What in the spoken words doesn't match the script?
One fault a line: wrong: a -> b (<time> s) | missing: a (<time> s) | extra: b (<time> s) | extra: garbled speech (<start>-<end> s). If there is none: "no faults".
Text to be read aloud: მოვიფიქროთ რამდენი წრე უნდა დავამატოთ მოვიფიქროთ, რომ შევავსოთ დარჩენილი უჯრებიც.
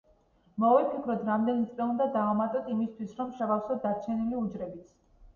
wrong: მოვიფიქროთ -> იმისთვის (2.8 s)